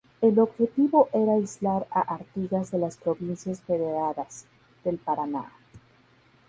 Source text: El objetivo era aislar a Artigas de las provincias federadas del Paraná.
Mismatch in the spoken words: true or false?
false